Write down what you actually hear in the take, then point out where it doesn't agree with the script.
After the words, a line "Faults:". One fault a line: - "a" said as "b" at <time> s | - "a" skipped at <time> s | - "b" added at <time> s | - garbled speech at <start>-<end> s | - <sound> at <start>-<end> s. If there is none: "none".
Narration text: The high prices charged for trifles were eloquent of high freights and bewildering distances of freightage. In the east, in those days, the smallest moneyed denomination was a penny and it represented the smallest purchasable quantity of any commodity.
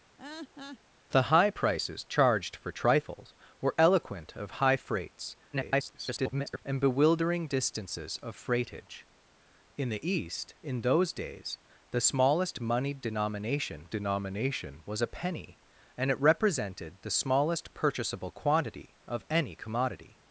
The high prices charged for trifles were eloquent of high freights [garbled] and bewildering distances of freightage. In the east, in those days, the smallest moneyed denomination denomination was a penny and it represented the smallest purchasable quantity of any commodity.
Faults:
- laugh at 0.2-0.8 s
- garbled speech at 5.5-6.6 s
- "denomination" added at 13.9 s